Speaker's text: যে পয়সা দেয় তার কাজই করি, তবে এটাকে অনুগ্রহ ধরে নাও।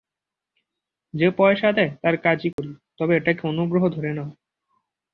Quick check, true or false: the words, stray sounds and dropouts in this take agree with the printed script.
false